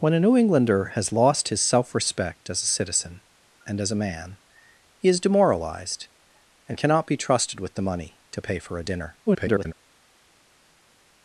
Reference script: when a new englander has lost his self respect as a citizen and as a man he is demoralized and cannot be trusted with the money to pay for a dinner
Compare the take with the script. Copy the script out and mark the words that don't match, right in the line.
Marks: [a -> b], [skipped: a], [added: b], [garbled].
when a new englander has lost his self respect as a citizen and as a man he is demoralized and cannot be trusted with the money to pay for a dinner [garbled]